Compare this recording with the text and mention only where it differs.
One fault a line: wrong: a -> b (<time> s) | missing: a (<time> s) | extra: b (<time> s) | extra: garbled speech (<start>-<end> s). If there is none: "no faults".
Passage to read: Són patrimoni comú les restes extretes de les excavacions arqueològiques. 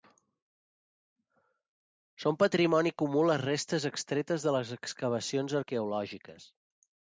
no faults